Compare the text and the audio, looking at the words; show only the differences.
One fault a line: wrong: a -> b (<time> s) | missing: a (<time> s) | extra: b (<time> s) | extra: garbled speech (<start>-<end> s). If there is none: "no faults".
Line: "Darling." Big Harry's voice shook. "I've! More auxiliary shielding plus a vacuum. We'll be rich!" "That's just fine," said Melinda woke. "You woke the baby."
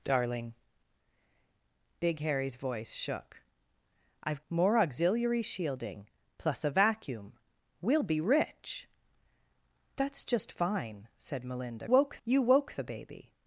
no faults